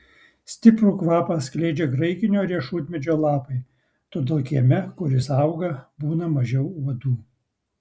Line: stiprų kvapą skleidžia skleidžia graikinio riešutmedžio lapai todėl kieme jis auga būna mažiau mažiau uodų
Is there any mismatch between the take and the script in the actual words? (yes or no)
yes